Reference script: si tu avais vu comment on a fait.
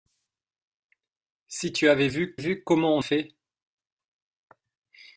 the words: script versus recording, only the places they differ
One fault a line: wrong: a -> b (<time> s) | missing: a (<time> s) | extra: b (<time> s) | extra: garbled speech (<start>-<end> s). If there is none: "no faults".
extra: vu (2.3 s)
missing: a (3.0 s)